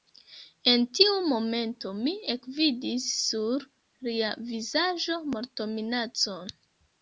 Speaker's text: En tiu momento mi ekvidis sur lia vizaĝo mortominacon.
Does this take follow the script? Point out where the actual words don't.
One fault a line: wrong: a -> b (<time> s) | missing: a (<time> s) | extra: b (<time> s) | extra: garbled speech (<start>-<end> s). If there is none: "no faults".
no faults